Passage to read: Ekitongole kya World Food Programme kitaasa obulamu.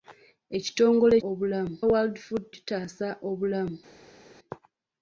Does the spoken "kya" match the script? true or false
false